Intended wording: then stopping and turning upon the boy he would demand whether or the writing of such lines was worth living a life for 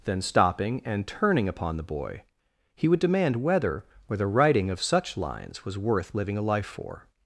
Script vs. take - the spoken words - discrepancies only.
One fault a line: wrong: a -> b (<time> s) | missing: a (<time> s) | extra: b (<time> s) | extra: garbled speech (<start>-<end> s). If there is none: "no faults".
no faults